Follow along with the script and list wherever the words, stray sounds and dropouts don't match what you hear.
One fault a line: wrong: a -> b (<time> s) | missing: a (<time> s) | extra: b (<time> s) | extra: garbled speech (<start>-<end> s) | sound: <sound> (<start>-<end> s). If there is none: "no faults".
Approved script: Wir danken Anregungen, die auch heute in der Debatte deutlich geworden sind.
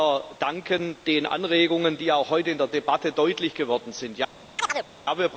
extra: den (1.1 s)
sound: chirp (4.6-4.9 s)